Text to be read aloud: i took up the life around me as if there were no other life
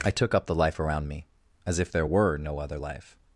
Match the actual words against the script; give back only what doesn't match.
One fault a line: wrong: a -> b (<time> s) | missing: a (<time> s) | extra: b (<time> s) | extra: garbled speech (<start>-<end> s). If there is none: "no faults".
no faults